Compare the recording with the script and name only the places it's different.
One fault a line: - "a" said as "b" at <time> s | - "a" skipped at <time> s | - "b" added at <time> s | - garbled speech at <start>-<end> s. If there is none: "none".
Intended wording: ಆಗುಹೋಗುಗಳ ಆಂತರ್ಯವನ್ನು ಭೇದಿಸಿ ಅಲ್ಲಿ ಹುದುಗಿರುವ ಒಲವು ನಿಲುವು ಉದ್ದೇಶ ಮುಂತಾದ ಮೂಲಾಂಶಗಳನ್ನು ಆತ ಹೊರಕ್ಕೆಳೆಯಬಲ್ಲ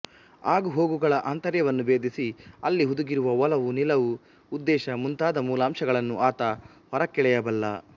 none